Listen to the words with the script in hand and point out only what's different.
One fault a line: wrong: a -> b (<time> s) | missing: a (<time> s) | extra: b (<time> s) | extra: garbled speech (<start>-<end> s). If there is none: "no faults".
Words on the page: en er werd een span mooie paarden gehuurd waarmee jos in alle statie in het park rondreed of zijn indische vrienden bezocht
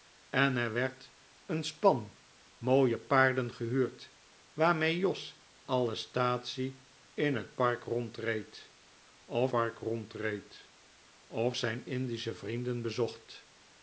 missing: in (5.4 s)
extra: park rondreed of (9.5 s)